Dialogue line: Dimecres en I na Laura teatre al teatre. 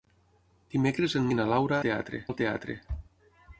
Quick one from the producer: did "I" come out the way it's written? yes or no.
yes